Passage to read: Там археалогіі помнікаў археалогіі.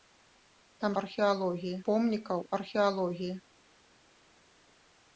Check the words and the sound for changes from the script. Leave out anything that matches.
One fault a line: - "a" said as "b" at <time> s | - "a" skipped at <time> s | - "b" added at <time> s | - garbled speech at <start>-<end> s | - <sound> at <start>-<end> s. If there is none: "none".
none